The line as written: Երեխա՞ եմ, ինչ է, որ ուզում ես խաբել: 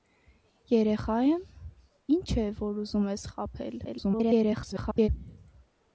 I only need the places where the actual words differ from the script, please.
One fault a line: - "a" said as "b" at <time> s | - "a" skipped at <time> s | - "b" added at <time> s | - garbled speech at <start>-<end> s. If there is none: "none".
- garbled speech at 3.8-5.1 s